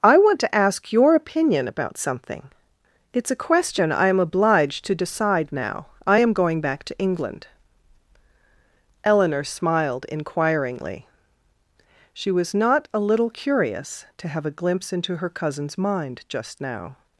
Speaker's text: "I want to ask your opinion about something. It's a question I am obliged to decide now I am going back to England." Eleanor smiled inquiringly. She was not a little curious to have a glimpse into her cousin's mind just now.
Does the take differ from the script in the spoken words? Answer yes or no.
no